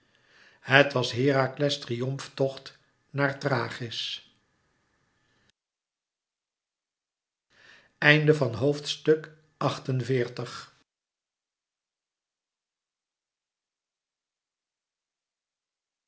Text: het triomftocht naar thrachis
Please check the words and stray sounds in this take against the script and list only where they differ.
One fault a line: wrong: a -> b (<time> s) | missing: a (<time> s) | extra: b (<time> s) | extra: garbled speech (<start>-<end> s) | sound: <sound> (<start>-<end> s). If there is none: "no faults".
extra: was herakles (0.9 s)